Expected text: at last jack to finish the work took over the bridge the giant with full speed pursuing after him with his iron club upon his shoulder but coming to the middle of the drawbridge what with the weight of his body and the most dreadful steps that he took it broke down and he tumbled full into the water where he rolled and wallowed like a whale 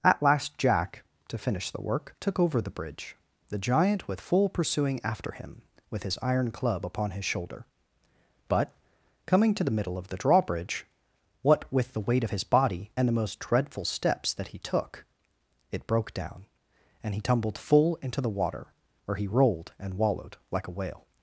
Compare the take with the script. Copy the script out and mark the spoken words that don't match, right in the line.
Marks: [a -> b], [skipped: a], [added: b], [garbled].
at last jack to finish the work took over the bridge the giant with full [skipped: speed] pursuing after him with his iron club upon his shoulder but coming to the middle of the drawbridge what with the weight of his body and the most dreadful steps that he took it broke down and he tumbled full into the water where he rolled and wallowed like a whale